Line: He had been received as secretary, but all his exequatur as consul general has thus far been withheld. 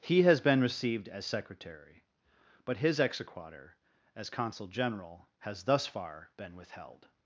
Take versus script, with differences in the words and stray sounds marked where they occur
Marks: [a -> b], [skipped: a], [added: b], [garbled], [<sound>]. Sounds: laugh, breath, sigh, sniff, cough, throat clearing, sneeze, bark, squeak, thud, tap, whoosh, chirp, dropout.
He [had -> has] been received as secretary, but [skipped: all] his exequatur as consul general has thus far been withheld.